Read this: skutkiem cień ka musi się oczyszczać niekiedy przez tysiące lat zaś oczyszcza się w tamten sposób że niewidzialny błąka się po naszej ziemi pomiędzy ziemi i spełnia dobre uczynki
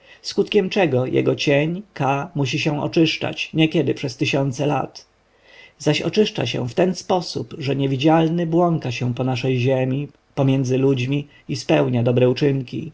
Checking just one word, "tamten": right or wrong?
wrong